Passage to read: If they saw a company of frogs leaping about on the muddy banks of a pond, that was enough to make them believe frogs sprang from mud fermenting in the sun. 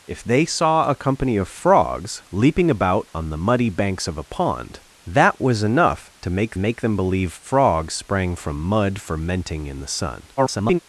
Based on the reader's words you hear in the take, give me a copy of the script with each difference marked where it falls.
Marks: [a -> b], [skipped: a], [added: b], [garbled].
If they saw a company of frogs leaping about on the muddy banks of a pond, that was enough to make [added: make] them believe frogs sprang from mud fermenting in the sun. [garbled]